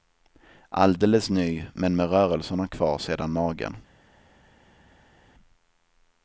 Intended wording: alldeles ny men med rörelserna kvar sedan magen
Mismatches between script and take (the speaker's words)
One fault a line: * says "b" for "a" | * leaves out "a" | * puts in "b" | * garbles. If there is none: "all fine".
all fine